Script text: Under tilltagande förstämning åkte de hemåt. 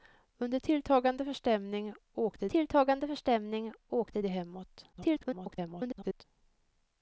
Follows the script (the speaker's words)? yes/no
no